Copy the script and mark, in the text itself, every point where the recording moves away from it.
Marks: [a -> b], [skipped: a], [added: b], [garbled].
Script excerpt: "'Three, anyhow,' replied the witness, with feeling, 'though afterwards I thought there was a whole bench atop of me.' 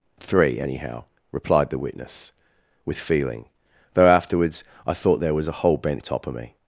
"'Three, anyhow,' replied the witness, with feeling, 'though afterwards I thought there was a whole bench atop of me.'